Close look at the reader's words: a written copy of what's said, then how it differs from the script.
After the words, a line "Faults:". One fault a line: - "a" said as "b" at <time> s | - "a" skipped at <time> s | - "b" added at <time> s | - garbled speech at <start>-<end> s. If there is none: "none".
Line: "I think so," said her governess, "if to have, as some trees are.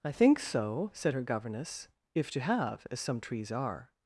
"I think so," said her governess, "if to have, as some trees are.
Faults:
none